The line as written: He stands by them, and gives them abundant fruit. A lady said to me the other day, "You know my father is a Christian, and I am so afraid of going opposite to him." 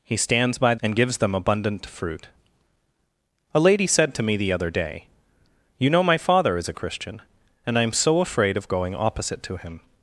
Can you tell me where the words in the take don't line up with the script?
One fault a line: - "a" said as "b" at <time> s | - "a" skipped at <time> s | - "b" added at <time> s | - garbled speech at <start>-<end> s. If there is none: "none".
- "them" skipped at 0.8 s